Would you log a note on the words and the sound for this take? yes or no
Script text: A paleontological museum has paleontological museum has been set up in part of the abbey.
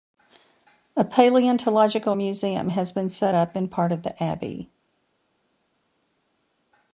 yes